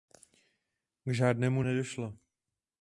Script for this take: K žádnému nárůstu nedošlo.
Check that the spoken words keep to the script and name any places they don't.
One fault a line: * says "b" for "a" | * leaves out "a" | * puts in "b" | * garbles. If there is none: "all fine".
* leaves out "nárůstu"